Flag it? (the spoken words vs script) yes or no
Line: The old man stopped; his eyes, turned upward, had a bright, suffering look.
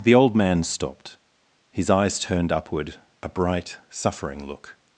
yes